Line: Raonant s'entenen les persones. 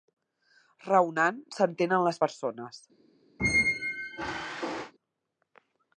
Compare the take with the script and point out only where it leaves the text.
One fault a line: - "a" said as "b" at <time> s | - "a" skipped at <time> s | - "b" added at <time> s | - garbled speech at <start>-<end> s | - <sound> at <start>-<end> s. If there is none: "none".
- squeak at 3.4-4.9 s